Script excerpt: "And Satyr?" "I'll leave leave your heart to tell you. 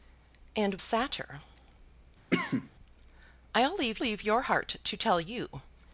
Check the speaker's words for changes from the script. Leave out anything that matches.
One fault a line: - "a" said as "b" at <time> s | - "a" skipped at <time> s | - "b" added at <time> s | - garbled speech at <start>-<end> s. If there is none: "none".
none